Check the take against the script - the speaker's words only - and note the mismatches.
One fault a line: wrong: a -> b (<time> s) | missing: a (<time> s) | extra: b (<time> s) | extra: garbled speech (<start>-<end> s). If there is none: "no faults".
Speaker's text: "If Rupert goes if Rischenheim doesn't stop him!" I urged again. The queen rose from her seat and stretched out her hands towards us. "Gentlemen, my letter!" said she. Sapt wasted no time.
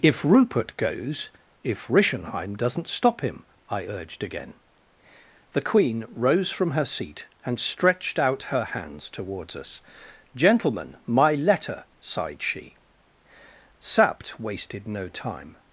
wrong: said -> sighed (12.0 s)